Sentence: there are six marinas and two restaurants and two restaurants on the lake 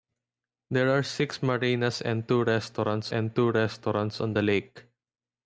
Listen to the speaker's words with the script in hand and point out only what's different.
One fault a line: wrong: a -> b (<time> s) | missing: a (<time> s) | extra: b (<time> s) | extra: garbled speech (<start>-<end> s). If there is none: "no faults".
no faults